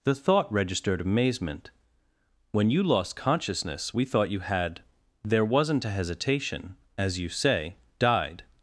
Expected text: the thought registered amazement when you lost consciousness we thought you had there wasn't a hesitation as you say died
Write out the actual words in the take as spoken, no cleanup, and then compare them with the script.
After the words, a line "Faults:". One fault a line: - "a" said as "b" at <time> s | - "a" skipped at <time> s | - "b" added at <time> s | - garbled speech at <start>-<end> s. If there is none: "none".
the thought registered amazement when you lost consciousness we thought you had there wasn't a hesitation as you say died
Faults:
none